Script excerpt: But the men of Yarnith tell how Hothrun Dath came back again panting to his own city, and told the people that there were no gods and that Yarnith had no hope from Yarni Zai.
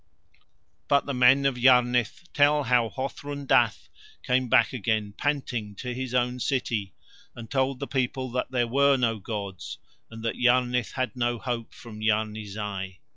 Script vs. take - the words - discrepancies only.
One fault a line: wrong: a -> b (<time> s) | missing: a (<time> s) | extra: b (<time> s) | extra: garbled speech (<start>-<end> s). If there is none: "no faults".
no faults